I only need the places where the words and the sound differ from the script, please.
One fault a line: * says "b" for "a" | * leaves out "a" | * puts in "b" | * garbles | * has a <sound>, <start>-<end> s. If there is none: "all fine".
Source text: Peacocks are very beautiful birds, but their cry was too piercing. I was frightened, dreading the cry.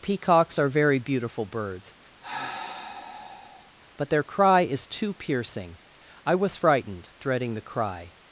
* has a sigh, 2.2-3.7 s
* says "is" for "was"